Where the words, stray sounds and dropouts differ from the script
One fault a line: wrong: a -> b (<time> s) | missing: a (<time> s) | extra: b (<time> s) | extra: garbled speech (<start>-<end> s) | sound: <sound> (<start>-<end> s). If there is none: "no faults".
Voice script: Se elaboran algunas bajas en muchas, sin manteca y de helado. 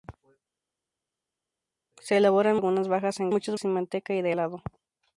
no faults